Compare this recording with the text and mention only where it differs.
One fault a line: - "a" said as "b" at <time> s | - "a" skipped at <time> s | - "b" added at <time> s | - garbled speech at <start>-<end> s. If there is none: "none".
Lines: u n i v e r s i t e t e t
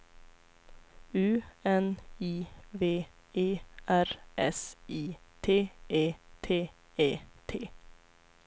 none